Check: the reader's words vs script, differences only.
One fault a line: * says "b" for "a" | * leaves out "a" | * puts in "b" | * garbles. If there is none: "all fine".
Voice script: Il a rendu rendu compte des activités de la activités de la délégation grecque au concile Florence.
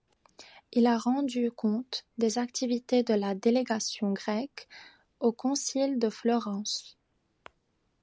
* leaves out "rendu"
* leaves out "activités de la"
* puts in "de"